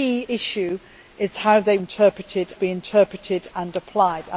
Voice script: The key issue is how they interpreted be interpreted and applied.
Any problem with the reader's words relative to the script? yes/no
no